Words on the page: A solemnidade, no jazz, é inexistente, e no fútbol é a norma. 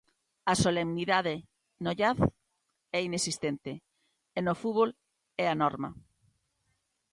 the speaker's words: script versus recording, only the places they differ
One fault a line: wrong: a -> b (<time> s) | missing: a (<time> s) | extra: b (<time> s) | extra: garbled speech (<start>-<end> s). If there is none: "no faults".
no faults